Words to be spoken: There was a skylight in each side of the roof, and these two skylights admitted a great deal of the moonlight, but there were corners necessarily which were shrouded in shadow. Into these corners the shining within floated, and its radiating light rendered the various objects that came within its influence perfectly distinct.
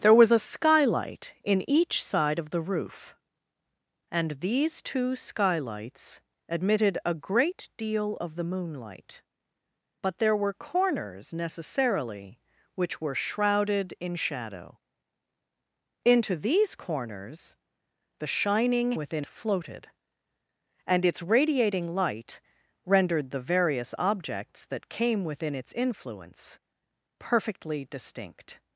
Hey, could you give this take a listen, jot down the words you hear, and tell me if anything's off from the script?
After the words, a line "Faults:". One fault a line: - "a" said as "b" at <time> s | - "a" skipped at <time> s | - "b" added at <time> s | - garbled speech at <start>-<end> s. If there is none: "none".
There was a skylight in each side of the roof, and these two skylights admitted a great deal of the moonlight, but there were corners necessarily which were shrouded in shadow. Into these corners the shining within floated, and its radiating light rendered the various objects that came within its influence perfectly distinct.
Faults:
none